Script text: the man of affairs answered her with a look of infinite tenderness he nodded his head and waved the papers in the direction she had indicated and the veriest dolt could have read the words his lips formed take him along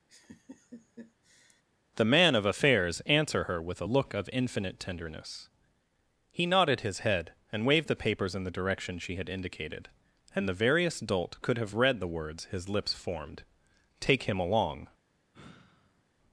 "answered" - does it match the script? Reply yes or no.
no